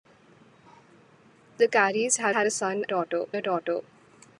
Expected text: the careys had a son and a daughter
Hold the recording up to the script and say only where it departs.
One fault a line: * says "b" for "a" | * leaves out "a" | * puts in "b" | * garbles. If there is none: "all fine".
* puts in "had"
* says "daughter" for "and"